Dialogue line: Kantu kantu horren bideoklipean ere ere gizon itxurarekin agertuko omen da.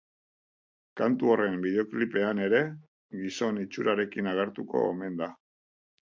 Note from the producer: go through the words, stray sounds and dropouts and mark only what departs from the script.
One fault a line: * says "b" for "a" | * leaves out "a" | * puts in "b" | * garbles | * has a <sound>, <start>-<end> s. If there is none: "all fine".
* leaves out "kantu"
* leaves out "ere"